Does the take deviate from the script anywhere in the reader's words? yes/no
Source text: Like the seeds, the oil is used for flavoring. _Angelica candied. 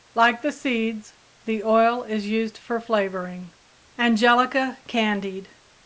no